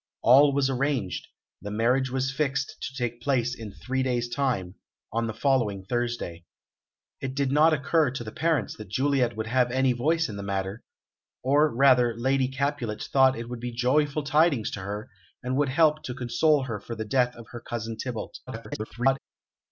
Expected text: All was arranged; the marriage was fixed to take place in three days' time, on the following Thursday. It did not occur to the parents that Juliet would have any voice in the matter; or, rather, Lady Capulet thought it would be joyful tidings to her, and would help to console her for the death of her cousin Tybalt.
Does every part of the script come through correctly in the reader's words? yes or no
no